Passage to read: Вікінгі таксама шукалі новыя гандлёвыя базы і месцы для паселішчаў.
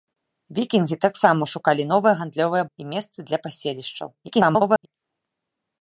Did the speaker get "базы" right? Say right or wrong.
wrong